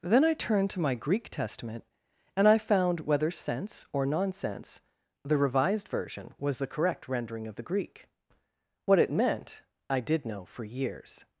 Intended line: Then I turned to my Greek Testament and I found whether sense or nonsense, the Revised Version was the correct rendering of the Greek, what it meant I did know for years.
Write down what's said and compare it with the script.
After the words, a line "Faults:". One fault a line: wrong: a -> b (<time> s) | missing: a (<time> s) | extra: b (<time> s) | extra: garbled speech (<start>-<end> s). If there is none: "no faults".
Then I turned to my Greek Testament and I found whether sense or nonsense, the Revised Version was the correct rendering of the Greek, what it meant I did know for years.
Faults:
no faults